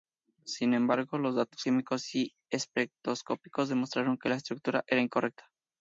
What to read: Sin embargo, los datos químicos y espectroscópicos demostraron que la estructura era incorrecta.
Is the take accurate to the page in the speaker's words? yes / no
yes